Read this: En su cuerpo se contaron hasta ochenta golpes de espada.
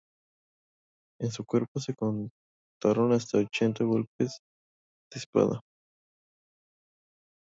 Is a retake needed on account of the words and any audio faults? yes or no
no